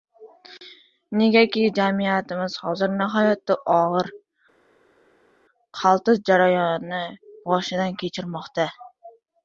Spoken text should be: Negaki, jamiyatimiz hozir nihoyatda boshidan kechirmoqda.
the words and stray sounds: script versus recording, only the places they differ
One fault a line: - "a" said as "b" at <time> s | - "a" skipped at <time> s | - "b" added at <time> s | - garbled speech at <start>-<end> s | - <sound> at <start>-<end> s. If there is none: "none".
- "og‘ir qaltis jarayonni" added at 3.8 s